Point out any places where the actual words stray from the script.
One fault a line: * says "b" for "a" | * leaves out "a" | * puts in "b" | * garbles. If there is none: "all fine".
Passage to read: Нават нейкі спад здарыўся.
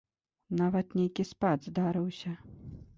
all fine